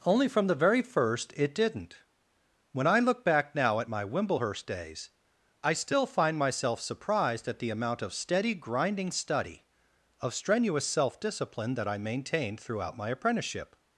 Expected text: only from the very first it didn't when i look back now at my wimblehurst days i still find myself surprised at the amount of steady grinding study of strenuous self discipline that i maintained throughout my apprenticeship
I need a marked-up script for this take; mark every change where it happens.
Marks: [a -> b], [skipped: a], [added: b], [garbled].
only from the very first it didn't when i look back now at my wimblehurst days i still find myself surprised at the amount of steady grinding study of strenuous self discipline that i maintained throughout my apprenticeship